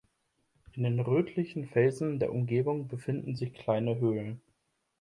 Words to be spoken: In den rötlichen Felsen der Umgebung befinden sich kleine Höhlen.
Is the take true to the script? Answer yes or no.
yes